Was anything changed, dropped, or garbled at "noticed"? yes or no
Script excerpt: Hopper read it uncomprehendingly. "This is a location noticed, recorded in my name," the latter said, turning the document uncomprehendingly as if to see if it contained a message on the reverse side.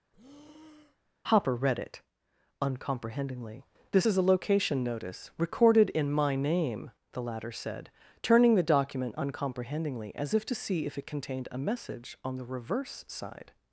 yes